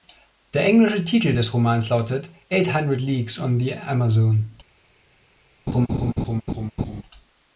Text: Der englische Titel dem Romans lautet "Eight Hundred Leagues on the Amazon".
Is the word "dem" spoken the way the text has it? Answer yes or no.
no